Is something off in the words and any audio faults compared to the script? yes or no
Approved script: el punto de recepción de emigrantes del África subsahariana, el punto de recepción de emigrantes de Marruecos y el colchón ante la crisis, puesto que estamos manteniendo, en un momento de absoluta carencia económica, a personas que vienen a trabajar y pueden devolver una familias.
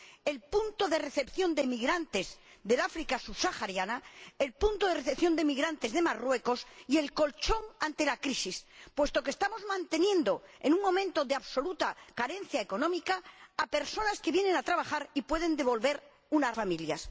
no